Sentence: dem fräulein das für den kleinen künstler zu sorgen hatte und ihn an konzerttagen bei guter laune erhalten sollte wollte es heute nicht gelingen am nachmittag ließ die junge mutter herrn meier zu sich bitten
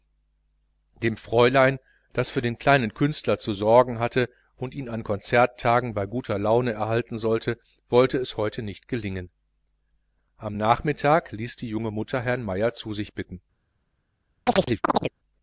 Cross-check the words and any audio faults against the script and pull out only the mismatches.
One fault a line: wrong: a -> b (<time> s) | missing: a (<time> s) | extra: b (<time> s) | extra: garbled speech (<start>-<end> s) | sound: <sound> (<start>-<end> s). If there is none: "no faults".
sound: chirp (14.5-15.1 s)